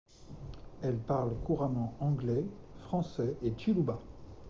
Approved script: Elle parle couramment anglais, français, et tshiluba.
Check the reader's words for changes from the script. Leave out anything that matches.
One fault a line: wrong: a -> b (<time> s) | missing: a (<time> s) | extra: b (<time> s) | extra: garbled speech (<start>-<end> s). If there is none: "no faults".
no faults